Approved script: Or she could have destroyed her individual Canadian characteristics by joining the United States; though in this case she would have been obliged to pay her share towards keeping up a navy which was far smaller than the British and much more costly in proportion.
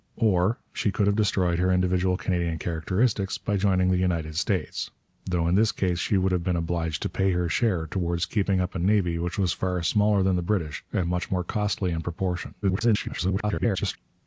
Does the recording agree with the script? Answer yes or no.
no